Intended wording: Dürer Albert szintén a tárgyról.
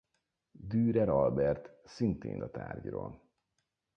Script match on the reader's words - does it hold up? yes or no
yes